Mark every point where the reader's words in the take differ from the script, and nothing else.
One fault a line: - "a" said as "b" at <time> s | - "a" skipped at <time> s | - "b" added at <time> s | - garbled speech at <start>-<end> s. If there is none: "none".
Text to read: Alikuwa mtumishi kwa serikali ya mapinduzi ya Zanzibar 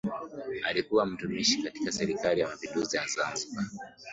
- "kwa" said as "katika" at 1.6 s